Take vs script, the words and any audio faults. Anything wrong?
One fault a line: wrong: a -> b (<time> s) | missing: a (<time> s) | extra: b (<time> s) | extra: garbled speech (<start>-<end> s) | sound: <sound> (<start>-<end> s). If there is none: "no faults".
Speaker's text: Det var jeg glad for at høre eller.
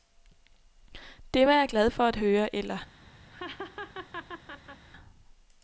sound: laugh (3.3-4.9 s)